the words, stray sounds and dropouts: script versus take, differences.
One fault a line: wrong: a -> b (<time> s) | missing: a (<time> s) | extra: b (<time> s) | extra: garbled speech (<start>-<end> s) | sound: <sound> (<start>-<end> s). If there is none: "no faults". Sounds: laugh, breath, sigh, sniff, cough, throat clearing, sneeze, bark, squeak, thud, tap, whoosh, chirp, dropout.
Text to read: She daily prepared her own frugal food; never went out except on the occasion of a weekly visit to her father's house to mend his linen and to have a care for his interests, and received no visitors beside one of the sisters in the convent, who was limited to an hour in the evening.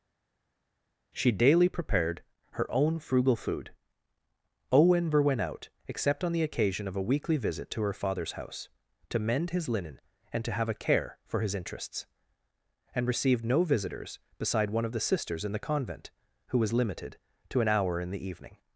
extra: owen (4.7 s)